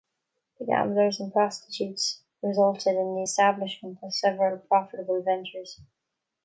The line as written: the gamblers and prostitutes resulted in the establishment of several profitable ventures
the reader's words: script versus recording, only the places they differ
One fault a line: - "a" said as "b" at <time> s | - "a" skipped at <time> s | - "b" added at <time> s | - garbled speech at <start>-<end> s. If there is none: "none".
none